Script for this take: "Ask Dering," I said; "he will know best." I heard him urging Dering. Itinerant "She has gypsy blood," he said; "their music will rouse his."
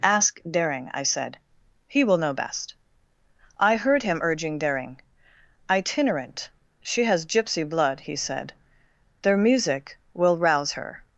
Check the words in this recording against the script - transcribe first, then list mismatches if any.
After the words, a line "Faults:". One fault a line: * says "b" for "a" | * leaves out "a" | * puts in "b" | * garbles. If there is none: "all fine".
"Ask Dering," I said; "he will know best." I heard him urging Dering. Itinerant "She has gypsy blood," he said; "their music will rouse her."
Faults:
* says "her" for "his"